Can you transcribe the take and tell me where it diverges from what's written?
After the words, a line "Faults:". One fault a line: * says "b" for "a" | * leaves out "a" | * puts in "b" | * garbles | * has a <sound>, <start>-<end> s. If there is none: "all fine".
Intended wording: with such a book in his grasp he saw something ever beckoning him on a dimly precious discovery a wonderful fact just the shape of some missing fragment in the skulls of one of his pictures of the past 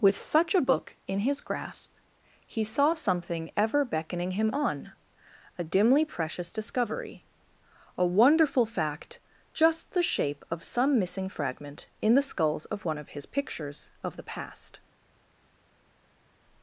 with such a book in his grasp he saw something ever beckoning him on a dimly precious discovery a wonderful fact just the shape of some missing fragment in the skulls of one of his pictures of the past
Faults:
all fine